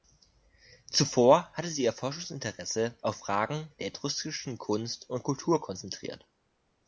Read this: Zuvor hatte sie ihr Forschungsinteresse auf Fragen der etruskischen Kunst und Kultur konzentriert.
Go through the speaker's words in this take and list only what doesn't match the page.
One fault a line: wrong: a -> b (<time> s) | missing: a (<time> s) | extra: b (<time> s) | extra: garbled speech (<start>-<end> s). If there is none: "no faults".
no faults